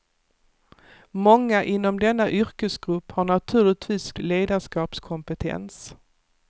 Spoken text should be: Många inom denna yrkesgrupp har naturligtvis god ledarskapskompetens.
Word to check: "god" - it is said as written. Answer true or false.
false